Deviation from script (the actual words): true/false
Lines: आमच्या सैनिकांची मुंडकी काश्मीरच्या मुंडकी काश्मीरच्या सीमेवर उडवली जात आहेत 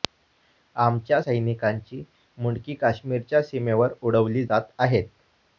true